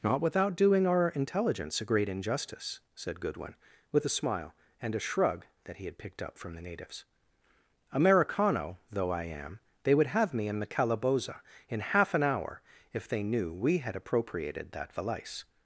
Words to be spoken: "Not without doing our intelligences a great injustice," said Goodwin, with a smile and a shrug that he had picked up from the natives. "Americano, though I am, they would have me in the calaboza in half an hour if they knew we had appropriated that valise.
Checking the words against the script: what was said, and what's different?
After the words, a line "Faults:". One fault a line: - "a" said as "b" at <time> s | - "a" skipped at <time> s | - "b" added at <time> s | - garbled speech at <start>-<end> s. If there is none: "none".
"Not without doing our intelligence a great injustice," said Goodwin, with a smile and a shrug that he had picked up from the natives. "Americano, though I am, they would have me in the calaboza in half an hour if they knew we had appropriated that valise.
Faults:
- "intelligences" said as "intelligence" at 1.1 s